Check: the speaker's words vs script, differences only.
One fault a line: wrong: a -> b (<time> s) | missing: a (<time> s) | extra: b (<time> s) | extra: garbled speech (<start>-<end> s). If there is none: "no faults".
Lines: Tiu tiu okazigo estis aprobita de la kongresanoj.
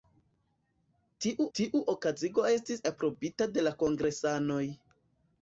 no faults